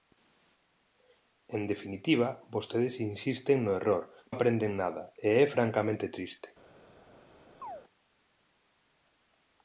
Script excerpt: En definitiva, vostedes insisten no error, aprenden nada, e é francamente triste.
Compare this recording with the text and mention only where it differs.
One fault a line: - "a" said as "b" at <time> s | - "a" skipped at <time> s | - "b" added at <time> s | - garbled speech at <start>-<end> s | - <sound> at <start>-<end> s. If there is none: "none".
- chirp at 7.6-7.8 s